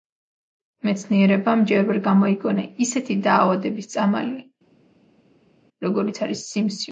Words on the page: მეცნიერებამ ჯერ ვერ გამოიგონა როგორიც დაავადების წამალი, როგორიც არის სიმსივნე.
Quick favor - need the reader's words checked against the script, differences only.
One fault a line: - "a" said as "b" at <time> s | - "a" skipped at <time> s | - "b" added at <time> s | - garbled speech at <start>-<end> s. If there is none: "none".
- "როგორიც" said as "ისეთი" at 2.9 s